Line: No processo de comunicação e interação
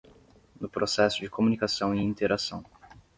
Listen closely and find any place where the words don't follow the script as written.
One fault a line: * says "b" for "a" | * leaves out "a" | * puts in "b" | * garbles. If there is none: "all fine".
all fine